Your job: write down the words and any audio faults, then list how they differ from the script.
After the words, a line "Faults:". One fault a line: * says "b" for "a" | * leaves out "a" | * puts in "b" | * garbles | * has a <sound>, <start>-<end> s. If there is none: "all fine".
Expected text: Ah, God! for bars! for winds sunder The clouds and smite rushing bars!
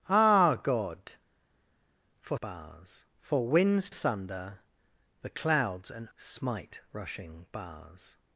Ah, God! for bars! for winds sunder The clouds and smite rushing bars!
Faults:
all fine